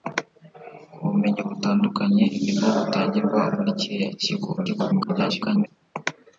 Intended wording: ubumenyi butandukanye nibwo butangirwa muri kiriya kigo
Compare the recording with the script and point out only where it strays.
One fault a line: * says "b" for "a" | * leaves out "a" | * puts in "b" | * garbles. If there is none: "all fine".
* garbles